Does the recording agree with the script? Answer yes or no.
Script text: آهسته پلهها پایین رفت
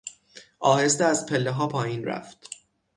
no